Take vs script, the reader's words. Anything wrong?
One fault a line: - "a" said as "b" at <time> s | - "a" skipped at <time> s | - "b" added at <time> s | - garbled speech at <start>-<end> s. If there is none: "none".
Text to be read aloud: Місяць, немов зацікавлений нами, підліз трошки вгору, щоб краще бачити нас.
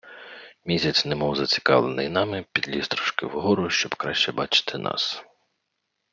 none